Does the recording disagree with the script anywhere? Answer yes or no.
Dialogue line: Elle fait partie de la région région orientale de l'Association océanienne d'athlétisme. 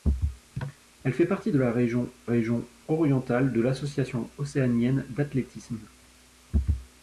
no